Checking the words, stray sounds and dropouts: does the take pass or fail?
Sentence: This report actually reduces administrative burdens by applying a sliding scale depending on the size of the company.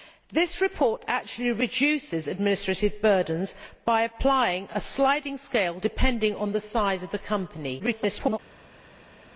fail